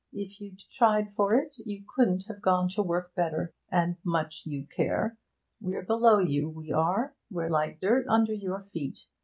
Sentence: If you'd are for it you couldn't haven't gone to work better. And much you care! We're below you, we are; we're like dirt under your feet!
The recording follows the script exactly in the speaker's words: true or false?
false